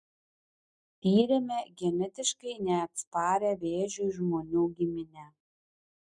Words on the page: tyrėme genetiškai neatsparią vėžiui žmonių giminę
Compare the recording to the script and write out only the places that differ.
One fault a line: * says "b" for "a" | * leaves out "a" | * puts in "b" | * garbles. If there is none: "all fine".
all fine